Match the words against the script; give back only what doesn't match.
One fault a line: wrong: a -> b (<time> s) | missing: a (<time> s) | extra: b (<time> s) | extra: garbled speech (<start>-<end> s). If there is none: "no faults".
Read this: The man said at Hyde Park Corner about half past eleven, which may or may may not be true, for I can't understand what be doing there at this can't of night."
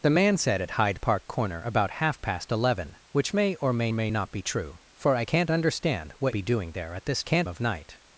no faults